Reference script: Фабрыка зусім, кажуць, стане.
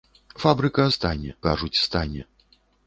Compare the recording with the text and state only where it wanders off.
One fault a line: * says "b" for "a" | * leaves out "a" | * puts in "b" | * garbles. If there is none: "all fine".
* says "стане" for "зусім"